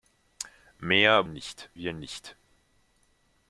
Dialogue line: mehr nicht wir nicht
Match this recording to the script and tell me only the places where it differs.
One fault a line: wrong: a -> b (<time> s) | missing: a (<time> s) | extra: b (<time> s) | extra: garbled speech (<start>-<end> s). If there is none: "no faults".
no faults